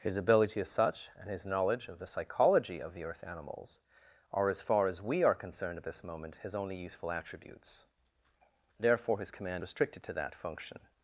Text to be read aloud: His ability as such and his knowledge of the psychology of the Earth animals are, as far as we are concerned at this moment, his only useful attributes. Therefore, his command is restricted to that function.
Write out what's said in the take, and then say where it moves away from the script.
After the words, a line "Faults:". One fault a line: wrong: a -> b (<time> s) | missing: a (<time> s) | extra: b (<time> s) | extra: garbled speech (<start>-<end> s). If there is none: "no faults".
His ability as such and his knowledge of the psychology of the Earth animals are, as far as we are concerned at this moment, his only useful attributes. Therefore, his command restricted to that function.
Faults:
missing: is (9.6 s)